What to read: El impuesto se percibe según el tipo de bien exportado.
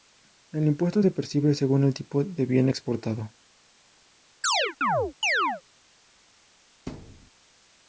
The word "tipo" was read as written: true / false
true